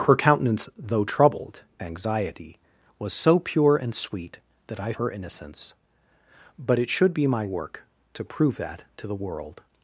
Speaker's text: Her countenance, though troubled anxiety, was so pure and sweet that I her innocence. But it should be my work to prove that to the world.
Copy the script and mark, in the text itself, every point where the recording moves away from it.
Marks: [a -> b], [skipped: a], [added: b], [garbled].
Her countenance, though troubled anxiety, was so pure and sweet that I her innocence. But it should be my work to prove that to the world.